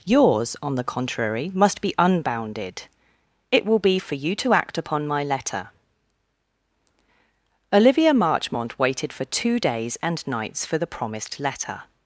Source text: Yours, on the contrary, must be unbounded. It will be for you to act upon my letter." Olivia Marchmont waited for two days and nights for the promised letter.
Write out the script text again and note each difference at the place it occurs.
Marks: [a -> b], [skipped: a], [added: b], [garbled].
Yours, on the contrary, must be unbounded. It will be for you to act upon my letter." Olivia Marchmont waited for two days and nights for the promised letter.